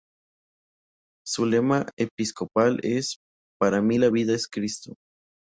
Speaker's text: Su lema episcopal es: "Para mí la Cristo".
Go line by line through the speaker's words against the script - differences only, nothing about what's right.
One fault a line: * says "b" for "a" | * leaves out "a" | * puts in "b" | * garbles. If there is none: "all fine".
* puts in "vida es"